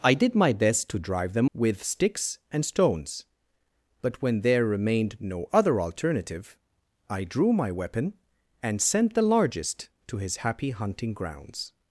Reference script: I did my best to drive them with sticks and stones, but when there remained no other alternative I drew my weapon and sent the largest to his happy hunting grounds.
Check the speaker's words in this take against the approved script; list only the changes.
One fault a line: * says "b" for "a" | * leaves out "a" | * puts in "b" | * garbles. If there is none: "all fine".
all fine